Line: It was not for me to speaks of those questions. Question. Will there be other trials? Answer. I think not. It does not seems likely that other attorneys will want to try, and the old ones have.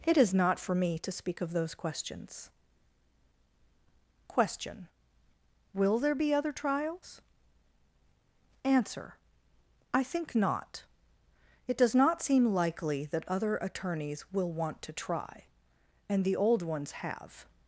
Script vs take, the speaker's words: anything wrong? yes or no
yes